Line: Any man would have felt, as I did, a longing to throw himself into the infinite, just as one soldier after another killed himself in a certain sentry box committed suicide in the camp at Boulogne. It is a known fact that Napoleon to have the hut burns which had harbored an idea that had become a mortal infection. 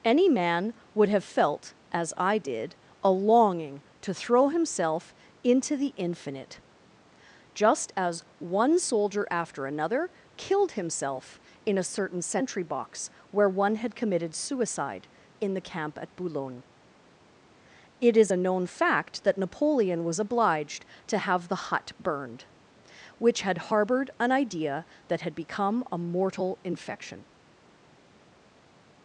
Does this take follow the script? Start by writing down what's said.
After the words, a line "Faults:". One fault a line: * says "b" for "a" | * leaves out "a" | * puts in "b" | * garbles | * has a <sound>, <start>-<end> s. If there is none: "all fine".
Any man would have felt, as I did, a longing to throw himself into the infinite, just as one soldier after another killed himself in a certain sentry box where one had committed suicide in the camp at Boulogne. It is a known fact that Napoleon was obliged to have the hut burned which had harbored an idea that had become a mortal infection.
Faults:
* puts in "where one had"
* puts in "was obliged"
* says "burned" for "burns"